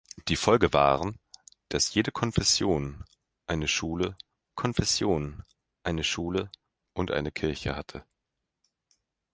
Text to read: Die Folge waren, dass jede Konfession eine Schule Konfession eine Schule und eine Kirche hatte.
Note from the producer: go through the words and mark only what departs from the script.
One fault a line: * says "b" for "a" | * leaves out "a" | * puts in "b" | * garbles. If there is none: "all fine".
all fine